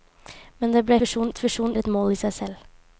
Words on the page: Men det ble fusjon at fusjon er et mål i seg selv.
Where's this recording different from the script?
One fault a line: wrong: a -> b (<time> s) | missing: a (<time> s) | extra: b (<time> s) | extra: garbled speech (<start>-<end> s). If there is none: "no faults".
no faults